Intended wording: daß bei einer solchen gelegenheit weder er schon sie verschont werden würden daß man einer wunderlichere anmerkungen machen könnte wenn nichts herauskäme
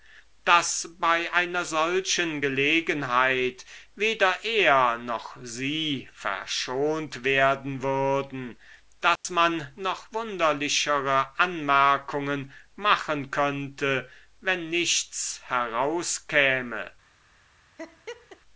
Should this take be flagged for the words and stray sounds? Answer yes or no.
yes